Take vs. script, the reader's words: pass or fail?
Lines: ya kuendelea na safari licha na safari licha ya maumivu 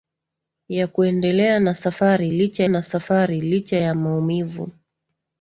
pass